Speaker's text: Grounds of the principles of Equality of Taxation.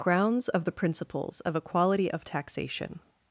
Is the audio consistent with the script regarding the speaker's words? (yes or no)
yes